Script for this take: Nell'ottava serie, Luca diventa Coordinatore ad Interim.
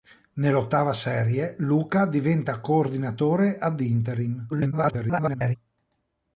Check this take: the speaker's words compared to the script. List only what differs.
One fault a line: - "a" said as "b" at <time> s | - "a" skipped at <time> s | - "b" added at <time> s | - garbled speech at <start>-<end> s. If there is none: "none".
- garbled speech at 4.5-5.6 s